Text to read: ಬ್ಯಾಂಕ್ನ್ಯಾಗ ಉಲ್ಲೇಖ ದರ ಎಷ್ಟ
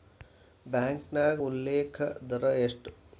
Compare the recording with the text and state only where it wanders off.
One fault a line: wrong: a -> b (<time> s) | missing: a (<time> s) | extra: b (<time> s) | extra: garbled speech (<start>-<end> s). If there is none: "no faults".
no faults